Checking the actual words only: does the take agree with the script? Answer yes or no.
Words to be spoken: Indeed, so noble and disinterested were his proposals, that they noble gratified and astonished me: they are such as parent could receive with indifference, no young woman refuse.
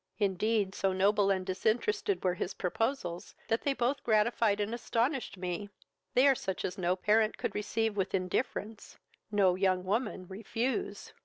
no